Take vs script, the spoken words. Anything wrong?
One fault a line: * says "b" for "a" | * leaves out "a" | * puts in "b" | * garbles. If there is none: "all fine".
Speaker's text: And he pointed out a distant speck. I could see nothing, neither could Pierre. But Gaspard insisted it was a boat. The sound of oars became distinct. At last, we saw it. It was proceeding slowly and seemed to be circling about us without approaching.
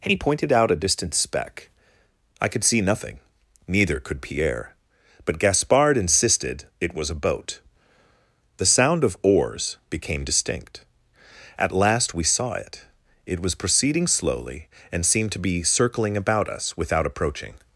all fine